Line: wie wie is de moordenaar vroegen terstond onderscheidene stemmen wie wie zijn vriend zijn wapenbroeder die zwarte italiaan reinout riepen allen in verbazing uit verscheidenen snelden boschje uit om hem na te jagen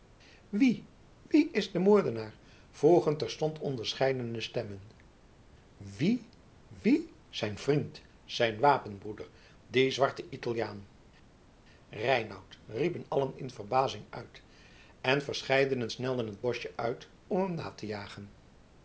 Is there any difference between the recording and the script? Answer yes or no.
yes